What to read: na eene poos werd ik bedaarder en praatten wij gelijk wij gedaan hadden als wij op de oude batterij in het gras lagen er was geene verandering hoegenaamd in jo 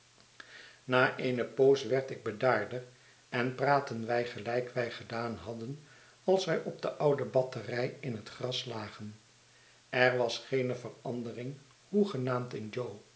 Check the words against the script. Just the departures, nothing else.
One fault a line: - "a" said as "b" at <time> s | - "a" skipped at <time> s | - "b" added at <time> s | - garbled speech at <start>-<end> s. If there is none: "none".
none